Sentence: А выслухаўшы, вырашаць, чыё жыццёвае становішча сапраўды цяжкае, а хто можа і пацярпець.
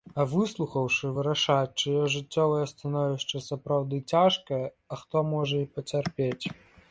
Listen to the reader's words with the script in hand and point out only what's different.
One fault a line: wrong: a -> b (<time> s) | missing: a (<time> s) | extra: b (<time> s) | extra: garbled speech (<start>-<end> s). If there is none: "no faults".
no faults